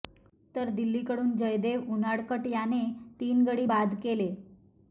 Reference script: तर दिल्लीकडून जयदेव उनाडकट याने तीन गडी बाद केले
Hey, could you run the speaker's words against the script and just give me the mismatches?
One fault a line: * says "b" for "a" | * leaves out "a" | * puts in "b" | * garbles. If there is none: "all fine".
all fine